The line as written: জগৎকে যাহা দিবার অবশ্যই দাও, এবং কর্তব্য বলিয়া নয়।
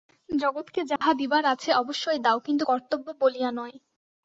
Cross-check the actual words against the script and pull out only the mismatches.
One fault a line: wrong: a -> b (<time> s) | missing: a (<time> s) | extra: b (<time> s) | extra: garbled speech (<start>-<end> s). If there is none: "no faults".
extra: আছে (1.4 s)
wrong: এবং -> কিন্তু (2.4 s)